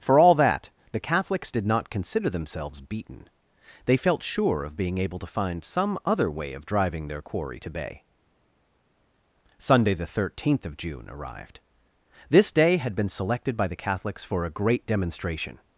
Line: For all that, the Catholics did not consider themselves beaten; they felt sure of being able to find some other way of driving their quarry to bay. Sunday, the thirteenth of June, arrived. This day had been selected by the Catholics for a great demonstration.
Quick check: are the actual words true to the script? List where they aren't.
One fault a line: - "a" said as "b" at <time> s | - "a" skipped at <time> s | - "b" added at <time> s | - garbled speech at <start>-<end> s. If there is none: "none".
none